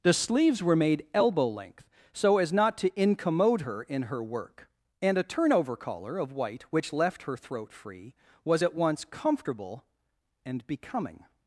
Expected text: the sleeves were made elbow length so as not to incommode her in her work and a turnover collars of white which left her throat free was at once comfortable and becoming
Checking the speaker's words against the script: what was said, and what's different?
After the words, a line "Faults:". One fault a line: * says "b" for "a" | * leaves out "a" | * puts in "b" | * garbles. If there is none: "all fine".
the sleeves were made elbow length so as not to incommode her in her work and a turnover collar of white which left her throat free was at once comfortable and becoming
Faults:
* says "collar" for "collars"